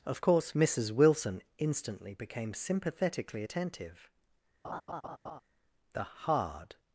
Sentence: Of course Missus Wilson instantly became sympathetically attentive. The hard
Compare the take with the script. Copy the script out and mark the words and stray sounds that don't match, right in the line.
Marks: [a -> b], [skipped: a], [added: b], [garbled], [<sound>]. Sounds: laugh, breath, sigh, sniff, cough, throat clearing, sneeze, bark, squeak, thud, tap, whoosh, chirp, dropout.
Of course Missus Wilson instantly became sympathetically attentive. [laugh] The hard